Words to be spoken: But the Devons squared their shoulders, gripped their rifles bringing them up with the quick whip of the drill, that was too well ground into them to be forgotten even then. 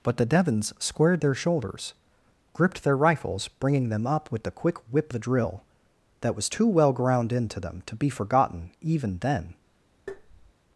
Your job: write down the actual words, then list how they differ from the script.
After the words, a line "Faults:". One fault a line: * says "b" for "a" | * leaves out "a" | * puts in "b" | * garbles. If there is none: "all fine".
But the Devons squared their shoulders, gripped their rifles bringing them up with the quick whip the drill, that was too well ground into them to be forgotten even then.
Faults:
* leaves out "of"